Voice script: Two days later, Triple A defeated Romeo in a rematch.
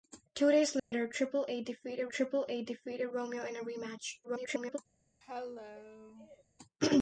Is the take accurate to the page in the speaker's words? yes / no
no